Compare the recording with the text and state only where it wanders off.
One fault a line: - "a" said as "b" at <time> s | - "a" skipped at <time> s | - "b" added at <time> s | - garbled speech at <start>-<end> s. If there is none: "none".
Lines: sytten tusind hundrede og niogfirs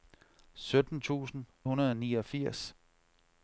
none